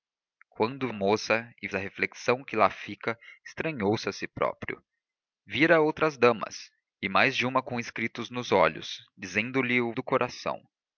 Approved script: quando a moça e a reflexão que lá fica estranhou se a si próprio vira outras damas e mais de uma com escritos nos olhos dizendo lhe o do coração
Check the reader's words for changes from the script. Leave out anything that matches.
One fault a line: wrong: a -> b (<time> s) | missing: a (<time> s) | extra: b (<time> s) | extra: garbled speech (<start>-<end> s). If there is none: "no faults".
no faults